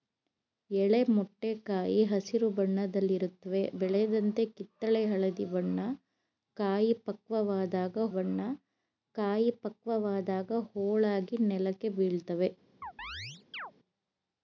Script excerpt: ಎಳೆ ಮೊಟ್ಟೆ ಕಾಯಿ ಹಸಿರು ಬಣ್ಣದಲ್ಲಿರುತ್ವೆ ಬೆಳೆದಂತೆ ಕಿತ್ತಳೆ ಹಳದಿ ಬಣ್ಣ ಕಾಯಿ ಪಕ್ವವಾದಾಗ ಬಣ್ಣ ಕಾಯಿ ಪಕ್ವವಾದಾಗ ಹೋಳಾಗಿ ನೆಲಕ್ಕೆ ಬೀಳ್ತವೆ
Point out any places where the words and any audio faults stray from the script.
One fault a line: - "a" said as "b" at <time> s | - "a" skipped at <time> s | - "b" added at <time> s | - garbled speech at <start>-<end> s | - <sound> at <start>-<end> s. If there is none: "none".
- chirp at 12.8-13.7 s